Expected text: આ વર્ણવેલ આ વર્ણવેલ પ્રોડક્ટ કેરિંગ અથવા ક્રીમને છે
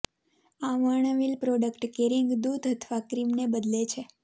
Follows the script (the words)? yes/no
no